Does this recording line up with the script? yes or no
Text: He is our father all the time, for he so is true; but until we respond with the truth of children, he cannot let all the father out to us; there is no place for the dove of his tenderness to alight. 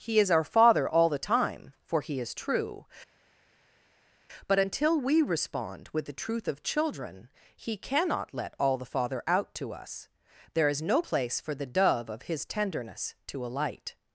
no